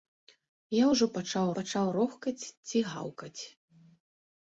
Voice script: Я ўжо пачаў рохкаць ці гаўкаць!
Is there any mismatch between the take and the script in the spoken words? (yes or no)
yes